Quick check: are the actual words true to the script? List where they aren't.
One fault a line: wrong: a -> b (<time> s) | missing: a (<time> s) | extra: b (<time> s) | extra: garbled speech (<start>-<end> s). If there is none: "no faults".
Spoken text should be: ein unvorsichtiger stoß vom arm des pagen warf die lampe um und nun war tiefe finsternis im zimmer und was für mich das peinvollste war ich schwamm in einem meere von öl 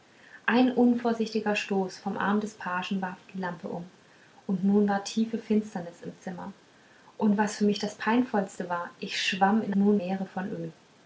wrong: einem -> nun (9.7 s)